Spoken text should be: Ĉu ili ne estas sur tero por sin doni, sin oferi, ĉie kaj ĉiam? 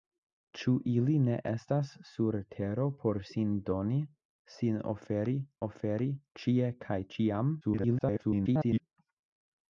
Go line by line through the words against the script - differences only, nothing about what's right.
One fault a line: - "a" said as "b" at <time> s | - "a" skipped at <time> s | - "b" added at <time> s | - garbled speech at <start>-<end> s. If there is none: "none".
- "oferi" added at 5.7 s
- garbled speech at 7.6-8.8 s